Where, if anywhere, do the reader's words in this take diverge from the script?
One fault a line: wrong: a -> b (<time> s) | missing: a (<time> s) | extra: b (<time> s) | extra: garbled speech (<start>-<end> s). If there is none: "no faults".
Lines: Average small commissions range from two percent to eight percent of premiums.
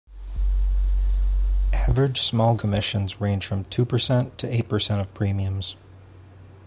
no faults